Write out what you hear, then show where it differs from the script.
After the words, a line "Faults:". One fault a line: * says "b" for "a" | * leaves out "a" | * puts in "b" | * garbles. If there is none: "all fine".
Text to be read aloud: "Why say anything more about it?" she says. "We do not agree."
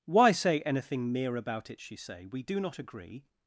"Why say anything mere about it?" she say. "We do not agree."
Faults:
* says "mere" for "more"
* says "say" for "says"